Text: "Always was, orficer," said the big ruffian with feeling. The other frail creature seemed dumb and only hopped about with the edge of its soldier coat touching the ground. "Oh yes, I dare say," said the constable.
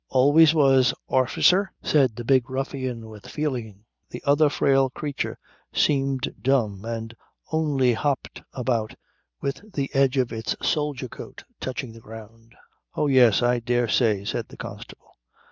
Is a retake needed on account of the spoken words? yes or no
no